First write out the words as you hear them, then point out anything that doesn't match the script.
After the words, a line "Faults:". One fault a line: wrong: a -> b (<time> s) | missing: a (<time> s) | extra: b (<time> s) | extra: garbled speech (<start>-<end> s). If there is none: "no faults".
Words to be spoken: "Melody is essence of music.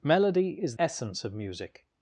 "Melody is essence of music.
Faults:
no faults